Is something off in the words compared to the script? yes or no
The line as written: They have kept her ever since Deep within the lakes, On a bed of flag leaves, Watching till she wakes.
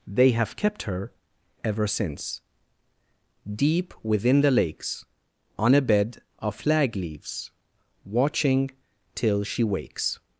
no